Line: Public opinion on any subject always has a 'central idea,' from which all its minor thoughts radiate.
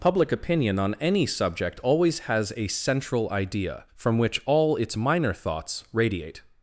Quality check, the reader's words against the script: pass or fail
pass